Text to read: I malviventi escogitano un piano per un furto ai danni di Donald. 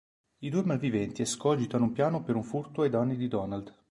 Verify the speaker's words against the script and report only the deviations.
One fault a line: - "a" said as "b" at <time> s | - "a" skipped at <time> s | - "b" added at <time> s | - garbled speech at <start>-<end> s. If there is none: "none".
- "due" added at 0.5 s